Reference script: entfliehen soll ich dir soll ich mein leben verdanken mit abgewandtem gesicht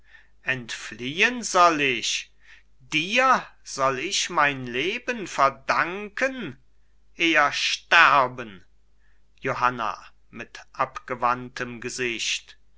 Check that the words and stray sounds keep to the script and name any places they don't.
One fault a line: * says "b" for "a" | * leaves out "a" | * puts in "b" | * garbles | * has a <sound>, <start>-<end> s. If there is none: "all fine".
* puts in "eher sterben johanna"